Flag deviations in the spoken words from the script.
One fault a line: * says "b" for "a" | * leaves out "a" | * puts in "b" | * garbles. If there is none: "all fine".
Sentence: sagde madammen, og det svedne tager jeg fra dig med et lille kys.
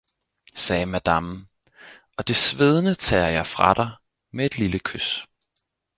all fine